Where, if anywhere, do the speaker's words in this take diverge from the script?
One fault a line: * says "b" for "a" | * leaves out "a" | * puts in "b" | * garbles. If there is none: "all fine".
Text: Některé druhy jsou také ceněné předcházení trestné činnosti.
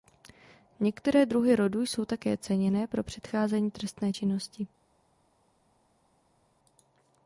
* puts in "rodu"
* puts in "pro"